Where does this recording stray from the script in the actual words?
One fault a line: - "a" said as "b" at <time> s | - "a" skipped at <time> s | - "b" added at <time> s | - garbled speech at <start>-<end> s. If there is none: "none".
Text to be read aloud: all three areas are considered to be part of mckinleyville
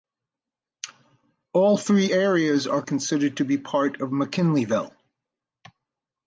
none